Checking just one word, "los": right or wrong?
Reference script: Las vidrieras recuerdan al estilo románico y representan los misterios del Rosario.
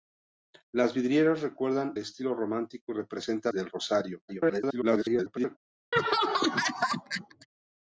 wrong